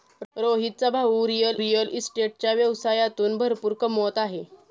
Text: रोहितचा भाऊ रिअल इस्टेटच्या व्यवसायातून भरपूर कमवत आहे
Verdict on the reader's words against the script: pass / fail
fail